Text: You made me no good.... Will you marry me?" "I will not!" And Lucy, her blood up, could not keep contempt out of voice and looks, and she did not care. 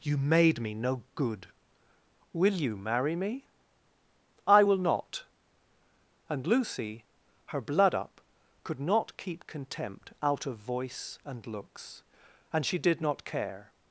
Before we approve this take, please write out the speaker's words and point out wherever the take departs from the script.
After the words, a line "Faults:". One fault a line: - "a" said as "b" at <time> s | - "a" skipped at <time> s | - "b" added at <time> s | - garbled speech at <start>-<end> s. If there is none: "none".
You made me no good.... Will you marry me?" "I will not!" And Lucy, her blood up, could not keep contempt out of voice and looks, and she did not care.
Faults:
none